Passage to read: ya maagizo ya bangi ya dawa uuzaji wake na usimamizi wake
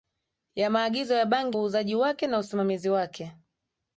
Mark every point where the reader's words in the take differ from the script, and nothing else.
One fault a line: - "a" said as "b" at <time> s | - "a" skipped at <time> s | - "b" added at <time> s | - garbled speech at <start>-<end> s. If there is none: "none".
- "ya dawa" skipped at 1.6 s